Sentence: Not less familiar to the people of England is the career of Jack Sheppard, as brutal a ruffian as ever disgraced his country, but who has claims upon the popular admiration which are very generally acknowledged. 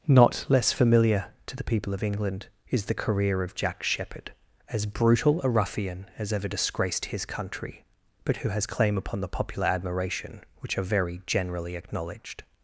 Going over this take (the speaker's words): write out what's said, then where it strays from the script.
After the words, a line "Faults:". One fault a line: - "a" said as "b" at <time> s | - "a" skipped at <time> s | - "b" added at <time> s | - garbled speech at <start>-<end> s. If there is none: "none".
Not less familiar to the people of England is the career of Jack Sheppard, as brutal a ruffian as ever disgraced his country, but who has claim upon the popular admiration which are very generally acknowledged.
Faults:
- "claims" said as "claim" at 8.7 s